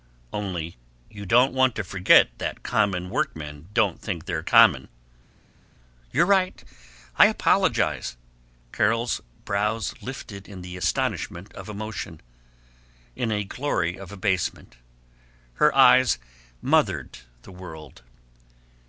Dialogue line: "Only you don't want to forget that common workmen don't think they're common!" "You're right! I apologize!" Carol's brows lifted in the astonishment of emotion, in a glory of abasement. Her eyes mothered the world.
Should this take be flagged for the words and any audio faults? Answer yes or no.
no